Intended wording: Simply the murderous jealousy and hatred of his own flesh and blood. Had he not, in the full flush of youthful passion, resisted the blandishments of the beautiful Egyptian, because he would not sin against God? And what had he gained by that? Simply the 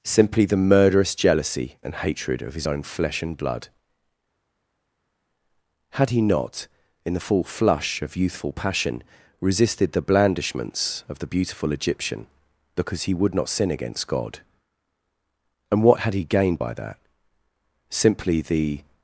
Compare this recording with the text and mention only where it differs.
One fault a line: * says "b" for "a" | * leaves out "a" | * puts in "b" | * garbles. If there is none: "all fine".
all fine